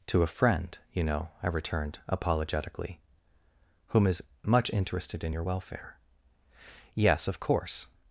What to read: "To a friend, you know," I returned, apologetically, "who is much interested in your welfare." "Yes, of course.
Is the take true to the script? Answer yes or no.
no